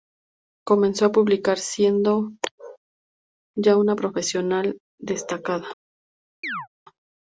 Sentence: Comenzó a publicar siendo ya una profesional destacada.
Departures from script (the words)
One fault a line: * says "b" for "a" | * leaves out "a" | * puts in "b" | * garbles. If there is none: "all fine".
all fine